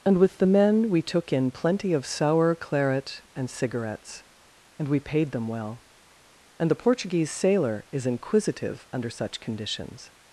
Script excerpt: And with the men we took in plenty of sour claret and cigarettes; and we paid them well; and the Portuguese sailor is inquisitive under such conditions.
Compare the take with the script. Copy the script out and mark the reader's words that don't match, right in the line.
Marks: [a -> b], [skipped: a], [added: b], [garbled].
And with the men we took in plenty of sour claret and cigarettes; and we paid them well; and the Portuguese sailor is inquisitive under such conditions.